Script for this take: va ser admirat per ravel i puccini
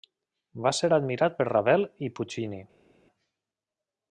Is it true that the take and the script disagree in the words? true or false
false